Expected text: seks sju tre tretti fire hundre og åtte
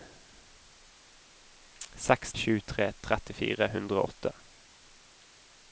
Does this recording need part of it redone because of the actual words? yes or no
no